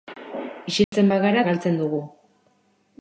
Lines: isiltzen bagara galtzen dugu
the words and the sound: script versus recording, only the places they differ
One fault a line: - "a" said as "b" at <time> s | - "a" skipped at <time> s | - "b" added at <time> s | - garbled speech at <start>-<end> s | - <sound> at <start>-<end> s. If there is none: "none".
- dropout at 0.8-0.9 s